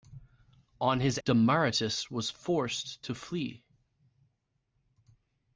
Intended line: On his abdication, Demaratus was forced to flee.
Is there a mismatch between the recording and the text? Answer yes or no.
yes